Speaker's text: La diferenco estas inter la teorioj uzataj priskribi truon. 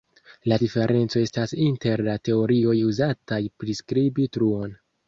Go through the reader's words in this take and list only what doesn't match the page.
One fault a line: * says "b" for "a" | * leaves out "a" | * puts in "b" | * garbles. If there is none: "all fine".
all fine